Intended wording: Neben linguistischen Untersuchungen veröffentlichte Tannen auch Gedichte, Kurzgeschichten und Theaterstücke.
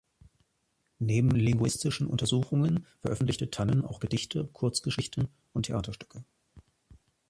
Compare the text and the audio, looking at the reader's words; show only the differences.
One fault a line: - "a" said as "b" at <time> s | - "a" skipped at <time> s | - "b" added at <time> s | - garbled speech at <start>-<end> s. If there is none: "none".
none